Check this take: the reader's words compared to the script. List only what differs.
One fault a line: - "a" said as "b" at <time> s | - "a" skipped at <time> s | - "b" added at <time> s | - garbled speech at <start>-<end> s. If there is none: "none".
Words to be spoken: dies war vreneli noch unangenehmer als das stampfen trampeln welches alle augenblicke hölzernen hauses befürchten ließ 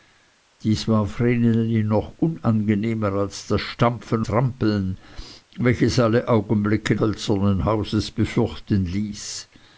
none